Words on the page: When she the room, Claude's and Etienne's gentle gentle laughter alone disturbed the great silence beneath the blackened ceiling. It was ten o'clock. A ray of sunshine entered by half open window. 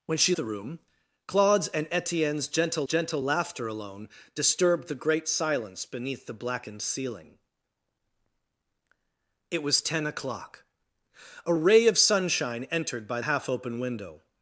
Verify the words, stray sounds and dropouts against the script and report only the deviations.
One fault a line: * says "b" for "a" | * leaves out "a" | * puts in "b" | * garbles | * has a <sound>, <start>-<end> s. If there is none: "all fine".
all fine